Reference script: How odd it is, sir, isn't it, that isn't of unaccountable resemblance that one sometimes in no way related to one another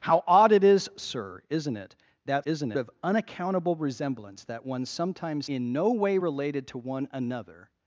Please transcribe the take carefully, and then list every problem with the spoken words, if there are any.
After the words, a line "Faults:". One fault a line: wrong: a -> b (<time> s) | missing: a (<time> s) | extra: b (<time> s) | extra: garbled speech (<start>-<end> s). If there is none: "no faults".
How odd it is, sir, isn't it, that isn't of unaccountable resemblance that one sometimes in no way related to one another
Faults:
no faults